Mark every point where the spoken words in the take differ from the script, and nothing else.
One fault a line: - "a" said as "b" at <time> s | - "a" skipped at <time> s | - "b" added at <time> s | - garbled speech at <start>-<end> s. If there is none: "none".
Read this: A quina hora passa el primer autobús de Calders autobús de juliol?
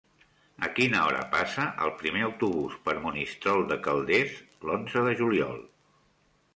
- "per Monistrol" added at 2.9 s
- "autobús" said as "l'onze" at 4.7 s